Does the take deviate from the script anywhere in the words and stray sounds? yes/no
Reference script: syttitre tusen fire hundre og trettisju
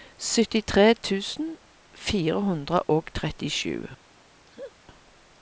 yes